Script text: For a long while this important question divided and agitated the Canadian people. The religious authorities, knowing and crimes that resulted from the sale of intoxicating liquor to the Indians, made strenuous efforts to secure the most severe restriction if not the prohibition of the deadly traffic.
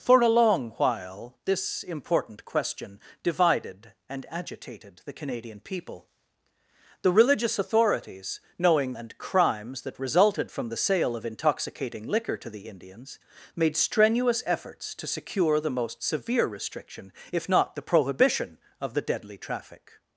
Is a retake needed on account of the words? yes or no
no